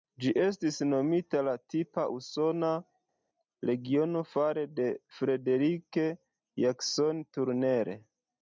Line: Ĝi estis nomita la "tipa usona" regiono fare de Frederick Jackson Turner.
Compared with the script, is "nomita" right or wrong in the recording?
right